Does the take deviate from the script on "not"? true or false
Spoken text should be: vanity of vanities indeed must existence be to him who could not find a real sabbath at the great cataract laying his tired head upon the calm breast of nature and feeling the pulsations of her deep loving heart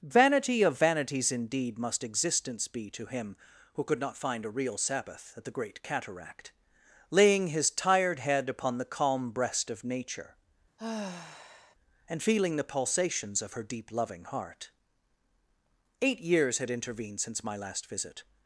false